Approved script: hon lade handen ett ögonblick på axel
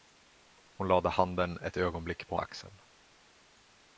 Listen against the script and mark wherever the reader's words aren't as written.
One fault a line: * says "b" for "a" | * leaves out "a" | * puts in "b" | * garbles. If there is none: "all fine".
all fine